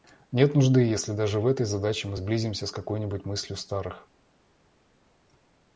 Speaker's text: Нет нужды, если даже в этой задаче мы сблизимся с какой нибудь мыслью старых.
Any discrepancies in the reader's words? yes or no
no